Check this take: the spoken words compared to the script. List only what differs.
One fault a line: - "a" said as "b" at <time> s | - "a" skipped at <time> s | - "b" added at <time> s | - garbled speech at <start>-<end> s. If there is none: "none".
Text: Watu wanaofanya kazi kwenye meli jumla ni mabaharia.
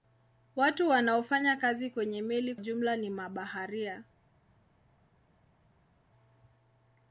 none